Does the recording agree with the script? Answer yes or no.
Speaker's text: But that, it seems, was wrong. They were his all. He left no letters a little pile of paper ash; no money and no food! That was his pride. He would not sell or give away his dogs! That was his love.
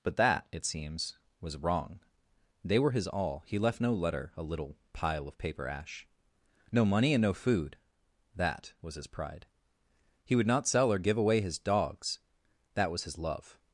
no